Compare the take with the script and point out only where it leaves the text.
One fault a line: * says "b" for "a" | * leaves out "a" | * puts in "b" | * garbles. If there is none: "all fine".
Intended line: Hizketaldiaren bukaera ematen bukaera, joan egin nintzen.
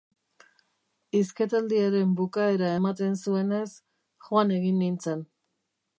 * says "zuenez" for "bukaera"